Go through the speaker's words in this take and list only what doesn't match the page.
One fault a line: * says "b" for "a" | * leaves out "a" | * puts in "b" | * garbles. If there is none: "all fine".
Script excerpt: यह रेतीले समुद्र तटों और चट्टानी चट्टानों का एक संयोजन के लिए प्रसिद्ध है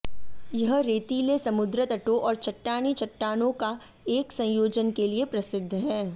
all fine